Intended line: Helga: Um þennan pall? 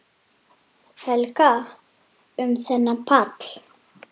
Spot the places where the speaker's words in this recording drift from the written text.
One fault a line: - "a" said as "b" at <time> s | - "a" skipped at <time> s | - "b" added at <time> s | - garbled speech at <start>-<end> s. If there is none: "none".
none